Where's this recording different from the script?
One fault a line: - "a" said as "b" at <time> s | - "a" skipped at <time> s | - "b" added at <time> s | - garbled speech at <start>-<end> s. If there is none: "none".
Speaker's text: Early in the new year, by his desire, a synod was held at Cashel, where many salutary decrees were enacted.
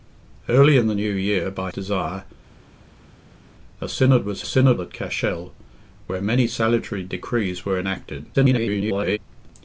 - "his" skipped at 1.7 s
- "held" said as "synod" at 4.5 s
- garbled speech at 8.3-9.2 s